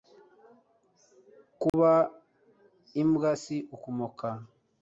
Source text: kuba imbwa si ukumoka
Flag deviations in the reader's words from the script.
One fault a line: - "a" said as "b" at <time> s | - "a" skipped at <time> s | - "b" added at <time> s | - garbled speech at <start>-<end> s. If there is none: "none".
none